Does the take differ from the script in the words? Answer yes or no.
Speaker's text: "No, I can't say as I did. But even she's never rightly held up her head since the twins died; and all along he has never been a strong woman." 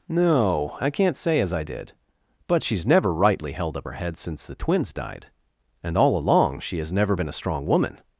yes